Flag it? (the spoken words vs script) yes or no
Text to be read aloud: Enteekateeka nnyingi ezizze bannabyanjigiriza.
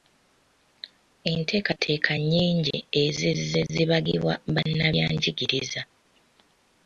yes